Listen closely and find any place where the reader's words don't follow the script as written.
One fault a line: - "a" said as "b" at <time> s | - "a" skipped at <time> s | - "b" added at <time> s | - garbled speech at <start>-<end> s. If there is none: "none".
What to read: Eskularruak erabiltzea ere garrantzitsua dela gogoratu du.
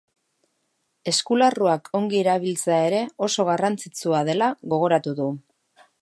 - "ongi" added at 2.0 s
- "oso" added at 3.3 s